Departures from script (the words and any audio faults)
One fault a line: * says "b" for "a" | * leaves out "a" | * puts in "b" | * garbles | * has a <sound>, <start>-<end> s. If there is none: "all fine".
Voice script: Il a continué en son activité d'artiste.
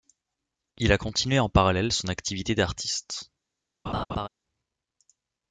* puts in "parallèle"
* has a laugh, 3.9-4.3 s